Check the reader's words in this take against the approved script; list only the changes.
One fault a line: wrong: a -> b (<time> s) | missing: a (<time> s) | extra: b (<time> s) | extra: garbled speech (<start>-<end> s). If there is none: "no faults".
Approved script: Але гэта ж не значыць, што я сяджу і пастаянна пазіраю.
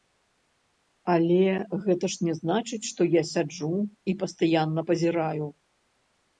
no faults